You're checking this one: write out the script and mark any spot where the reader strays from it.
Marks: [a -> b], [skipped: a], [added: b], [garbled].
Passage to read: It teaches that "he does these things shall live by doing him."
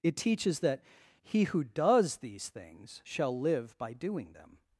It teaches that "he [added: who] does these things shall live by doing [him." -> them]